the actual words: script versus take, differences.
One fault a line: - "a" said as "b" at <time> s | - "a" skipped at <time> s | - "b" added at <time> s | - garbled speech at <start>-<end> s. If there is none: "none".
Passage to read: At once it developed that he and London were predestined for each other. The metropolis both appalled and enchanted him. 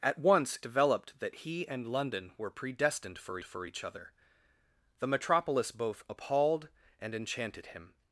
- "it" skipped at 0.6 s
- "for" added at 3.4 s